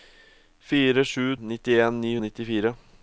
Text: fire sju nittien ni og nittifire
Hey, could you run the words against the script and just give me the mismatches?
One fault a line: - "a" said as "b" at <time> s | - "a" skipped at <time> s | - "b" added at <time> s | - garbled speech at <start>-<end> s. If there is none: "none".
none